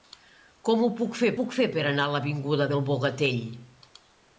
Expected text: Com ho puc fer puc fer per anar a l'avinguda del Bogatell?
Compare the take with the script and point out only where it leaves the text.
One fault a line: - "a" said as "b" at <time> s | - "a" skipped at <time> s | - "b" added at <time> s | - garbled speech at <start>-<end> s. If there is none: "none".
none